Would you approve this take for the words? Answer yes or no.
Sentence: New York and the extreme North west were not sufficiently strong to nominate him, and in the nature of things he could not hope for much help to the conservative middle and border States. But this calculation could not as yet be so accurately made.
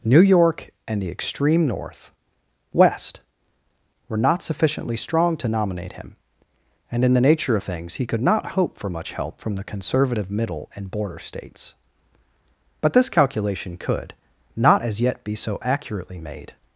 no